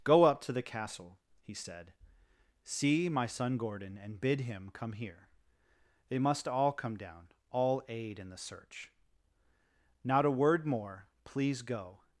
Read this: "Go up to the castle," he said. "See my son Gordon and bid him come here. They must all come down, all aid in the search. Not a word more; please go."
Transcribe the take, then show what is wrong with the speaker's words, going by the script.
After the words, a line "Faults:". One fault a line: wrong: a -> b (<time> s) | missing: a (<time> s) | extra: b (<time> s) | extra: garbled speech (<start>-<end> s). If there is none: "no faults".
"Go up to the castle," he said. "See my son Gordon and bid him come here. They must all come down, all aid in the search. Not a word more; please go."
Faults:
no faults